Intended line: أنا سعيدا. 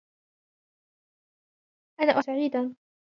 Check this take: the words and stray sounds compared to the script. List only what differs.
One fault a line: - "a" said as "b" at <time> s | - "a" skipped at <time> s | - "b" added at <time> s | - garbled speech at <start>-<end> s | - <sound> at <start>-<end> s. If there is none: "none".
none